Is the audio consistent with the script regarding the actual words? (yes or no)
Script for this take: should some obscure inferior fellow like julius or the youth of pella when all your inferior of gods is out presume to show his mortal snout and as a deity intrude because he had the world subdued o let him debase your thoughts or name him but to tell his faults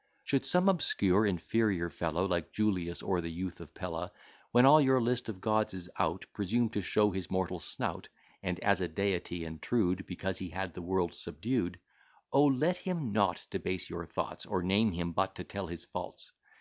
no